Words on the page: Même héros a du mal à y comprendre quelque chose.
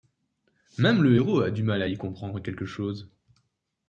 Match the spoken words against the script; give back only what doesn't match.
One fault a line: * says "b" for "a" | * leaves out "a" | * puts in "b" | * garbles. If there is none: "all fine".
* puts in "le"